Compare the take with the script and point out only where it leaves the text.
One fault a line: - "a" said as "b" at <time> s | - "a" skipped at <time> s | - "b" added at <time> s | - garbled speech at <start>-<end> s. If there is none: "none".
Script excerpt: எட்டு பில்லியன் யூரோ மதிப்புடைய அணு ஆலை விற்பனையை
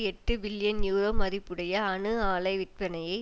none